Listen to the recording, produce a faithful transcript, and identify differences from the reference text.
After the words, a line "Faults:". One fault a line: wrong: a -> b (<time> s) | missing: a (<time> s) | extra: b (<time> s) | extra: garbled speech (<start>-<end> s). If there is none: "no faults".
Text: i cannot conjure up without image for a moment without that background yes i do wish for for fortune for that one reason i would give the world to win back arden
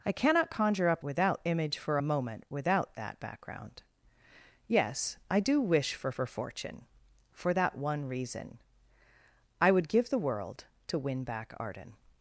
i cannot conjure up without image for a moment without that background yes i do wish for for fortune for that one reason i would give the world to win back arden
Faults:
no faults